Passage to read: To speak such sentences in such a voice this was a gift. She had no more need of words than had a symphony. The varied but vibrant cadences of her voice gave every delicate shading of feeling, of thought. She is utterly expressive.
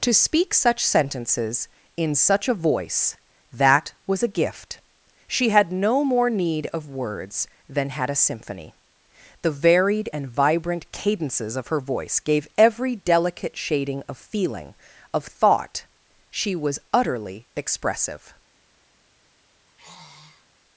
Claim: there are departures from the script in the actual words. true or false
true